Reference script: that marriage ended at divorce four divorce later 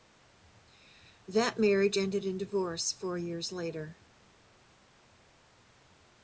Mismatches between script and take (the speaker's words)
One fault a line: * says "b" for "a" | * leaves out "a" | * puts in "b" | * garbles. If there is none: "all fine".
* says "in" for "at"
* says "years" for "divorce"